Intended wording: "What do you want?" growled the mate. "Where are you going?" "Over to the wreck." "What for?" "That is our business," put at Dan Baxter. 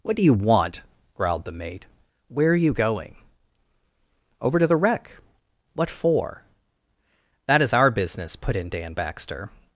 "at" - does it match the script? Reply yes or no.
no